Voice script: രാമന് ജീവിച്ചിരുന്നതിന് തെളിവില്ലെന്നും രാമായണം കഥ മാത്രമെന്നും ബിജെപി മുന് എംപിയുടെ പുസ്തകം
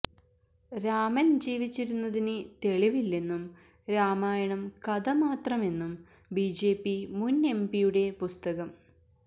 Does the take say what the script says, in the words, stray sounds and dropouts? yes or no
yes